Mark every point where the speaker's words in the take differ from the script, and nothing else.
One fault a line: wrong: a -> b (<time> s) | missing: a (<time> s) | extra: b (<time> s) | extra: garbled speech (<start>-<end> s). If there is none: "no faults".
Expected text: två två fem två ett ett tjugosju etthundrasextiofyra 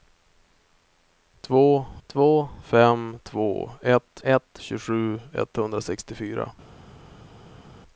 no faults